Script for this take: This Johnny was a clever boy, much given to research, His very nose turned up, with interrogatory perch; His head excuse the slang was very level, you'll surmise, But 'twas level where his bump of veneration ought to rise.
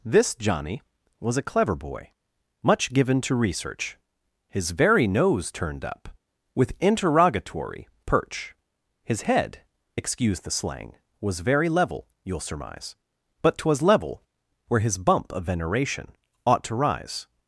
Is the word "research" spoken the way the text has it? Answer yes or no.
yes